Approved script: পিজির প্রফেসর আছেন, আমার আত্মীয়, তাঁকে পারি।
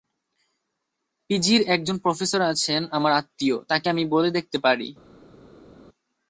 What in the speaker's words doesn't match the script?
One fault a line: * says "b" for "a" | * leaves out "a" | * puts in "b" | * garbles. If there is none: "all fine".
* puts in "একজন"
* puts in "আমি বলে দেখতে"